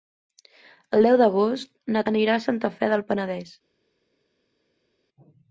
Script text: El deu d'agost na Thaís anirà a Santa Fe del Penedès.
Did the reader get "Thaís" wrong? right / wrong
wrong